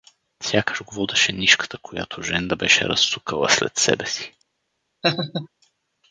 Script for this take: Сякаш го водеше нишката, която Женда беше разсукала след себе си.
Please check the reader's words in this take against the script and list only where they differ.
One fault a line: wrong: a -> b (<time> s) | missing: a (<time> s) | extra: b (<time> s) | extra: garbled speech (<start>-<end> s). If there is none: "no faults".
no faults